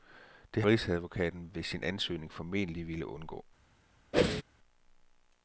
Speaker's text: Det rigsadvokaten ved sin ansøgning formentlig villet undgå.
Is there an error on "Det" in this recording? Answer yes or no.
no